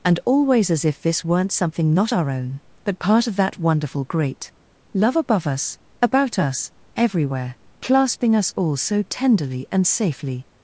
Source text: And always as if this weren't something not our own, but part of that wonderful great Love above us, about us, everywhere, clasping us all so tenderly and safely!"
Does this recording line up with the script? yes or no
yes